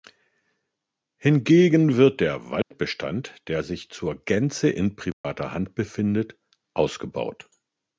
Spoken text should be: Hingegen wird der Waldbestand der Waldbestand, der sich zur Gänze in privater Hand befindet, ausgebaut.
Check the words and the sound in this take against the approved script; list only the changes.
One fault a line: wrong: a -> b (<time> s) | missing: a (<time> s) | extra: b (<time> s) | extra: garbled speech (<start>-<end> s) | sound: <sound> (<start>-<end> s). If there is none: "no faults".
sound: dropout (2.6-2.7 s)
missing: Waldbestand der (3.6 s)
sound: dropout (5.1-5.2 s)